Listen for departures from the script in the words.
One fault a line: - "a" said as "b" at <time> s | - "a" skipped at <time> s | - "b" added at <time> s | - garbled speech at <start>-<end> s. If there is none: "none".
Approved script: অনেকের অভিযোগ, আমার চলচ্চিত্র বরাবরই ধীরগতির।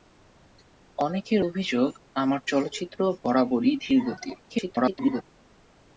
- garbled speech at 4.5-5.2 s